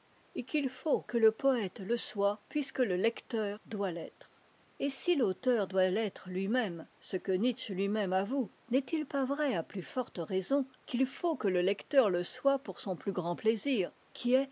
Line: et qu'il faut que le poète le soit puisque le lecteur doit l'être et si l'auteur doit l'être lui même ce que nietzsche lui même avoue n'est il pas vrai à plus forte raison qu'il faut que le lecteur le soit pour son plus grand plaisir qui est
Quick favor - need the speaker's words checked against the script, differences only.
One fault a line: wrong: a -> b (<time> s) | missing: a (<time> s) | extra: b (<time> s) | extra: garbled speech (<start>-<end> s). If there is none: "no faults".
no faults